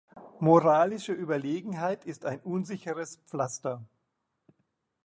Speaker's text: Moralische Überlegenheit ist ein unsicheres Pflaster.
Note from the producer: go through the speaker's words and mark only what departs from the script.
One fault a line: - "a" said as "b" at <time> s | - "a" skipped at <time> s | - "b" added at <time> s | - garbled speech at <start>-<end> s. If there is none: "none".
none